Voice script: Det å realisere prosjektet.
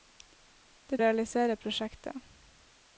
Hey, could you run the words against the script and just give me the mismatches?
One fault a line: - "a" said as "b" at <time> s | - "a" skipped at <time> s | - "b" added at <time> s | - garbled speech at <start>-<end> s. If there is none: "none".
none